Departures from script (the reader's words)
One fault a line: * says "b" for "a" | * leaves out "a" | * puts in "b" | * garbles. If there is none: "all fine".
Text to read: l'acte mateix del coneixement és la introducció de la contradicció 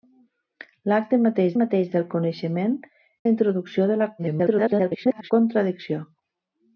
* puts in "mateix"
* leaves out "és"
* garbles